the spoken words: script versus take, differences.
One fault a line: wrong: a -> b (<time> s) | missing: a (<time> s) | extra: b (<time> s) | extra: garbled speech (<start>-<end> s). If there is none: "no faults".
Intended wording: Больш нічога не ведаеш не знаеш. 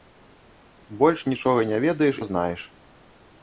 no faults